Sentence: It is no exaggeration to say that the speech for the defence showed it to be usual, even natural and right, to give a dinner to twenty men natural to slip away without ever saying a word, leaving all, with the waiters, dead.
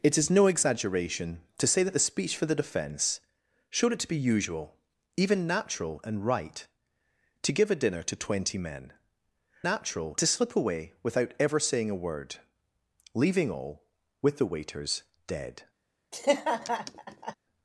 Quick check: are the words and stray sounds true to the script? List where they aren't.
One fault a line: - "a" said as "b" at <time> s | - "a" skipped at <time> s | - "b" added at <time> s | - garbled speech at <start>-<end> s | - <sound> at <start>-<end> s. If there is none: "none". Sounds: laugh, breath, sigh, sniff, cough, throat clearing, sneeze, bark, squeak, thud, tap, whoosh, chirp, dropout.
- laugh at 16.1-17.3 s